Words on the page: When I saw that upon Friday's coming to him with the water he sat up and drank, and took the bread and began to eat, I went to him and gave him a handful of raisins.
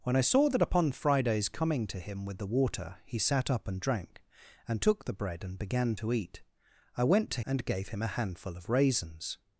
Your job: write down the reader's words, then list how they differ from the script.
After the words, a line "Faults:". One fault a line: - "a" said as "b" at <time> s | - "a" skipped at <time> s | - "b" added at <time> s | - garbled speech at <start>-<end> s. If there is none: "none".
When I saw that upon Friday's coming to him with the water he sat up and drank, and took the bread and began to eat, I went to and gave him a handful of raisins.
Faults:
- "him" skipped at 7.4 s